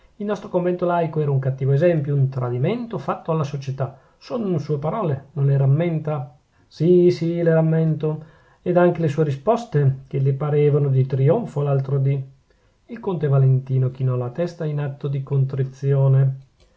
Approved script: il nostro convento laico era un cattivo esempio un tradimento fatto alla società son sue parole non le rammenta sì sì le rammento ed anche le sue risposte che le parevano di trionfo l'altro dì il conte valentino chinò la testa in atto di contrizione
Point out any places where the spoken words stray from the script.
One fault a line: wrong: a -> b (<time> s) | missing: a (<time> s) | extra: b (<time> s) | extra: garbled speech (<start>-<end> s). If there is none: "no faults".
no faults